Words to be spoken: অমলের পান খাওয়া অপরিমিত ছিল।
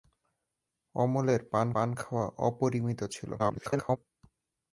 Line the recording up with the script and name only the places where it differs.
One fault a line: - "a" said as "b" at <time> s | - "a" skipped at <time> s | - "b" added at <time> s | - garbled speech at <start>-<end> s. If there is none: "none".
- "পান" added at 1.7 s
- garbled speech at 3.4-4.0 s